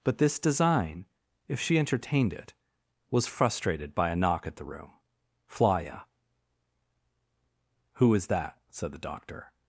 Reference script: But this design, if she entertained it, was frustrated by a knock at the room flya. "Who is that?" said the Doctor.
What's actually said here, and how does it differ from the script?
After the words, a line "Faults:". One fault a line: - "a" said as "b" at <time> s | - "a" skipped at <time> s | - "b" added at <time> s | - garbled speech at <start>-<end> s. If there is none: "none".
But this design, if she entertained it, was frustrated by a knock at the room flya. "Who is that?" said the Doctor.
Faults:
none